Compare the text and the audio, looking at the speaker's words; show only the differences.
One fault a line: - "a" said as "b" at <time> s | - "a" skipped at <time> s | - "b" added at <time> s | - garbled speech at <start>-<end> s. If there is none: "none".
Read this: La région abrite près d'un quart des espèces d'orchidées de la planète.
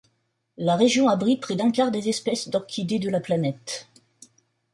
none